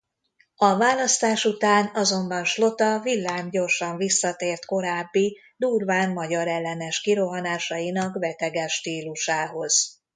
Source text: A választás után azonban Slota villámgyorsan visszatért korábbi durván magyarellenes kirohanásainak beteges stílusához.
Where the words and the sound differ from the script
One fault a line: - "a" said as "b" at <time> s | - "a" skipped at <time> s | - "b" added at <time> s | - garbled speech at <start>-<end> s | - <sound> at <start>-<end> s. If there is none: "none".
none